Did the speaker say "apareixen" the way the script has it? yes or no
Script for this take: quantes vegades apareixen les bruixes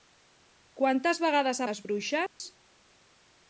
no